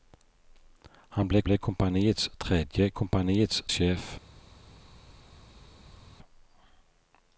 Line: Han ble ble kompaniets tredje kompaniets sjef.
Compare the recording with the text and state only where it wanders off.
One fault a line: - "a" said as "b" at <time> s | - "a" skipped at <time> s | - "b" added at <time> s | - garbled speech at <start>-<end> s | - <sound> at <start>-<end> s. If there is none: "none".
none